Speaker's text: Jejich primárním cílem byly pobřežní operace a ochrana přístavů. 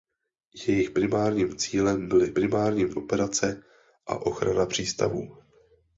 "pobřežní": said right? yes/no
no